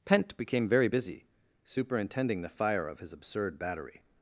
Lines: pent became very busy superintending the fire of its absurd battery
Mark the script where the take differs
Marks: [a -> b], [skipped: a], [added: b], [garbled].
pent became very busy superintending the fire of [its -> his] absurd battery